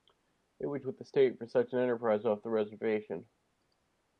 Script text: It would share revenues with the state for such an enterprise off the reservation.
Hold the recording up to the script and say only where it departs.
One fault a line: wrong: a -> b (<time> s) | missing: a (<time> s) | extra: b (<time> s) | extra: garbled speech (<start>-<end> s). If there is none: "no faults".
missing: share revenues (0.8 s)